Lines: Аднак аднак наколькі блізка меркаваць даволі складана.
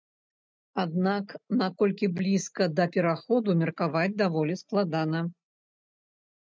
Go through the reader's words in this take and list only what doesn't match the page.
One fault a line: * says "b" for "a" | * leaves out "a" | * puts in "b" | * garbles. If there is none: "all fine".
* leaves out "аднак"
* puts in "да пераходу"